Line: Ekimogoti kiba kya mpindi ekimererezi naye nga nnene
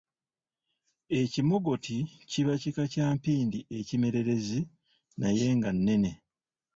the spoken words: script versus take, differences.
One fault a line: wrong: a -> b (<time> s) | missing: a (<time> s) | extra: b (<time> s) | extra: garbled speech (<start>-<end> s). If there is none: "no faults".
extra: kika (2.6 s)